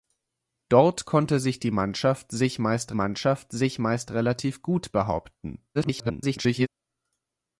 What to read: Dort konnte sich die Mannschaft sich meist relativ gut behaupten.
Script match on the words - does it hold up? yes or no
no